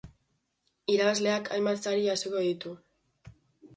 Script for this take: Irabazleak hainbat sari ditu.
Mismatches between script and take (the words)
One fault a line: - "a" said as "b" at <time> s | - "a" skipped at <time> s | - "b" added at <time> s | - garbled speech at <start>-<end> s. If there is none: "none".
- "jasoko" added at 2.1 s